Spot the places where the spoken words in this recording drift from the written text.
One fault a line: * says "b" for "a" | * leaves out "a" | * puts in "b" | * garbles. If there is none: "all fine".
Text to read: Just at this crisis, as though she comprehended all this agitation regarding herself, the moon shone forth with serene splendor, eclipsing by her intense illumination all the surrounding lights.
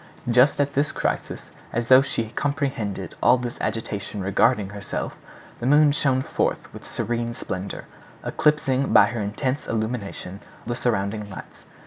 * leaves out "all"